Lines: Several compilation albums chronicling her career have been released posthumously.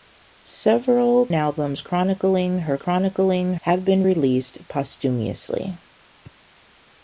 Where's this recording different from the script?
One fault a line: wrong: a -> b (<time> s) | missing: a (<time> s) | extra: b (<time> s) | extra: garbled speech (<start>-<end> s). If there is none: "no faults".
missing: compilation (1.3 s)
wrong: career -> chronicling (2.7 s)